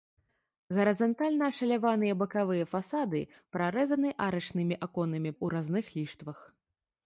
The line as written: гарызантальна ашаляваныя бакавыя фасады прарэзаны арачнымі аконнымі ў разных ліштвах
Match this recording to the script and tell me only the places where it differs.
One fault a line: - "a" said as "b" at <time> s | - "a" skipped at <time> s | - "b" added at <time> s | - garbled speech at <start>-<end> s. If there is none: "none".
none